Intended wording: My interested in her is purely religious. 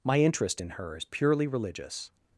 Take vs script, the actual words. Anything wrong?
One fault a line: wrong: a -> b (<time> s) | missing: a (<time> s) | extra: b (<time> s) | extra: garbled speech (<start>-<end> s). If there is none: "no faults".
wrong: interested -> interest (0.2 s)